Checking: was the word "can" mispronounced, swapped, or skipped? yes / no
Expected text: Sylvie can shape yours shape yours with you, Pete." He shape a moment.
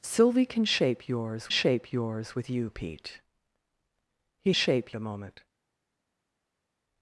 no